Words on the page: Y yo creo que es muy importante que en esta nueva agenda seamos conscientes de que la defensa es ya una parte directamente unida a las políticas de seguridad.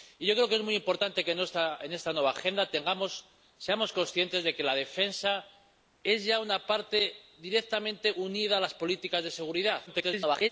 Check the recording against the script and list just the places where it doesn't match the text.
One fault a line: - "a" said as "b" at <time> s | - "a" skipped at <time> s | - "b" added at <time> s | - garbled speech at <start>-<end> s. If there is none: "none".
- garbled speech at 9.9-10.5 s